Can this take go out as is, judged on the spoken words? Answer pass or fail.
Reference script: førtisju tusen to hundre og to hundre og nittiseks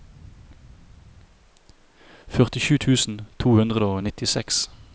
fail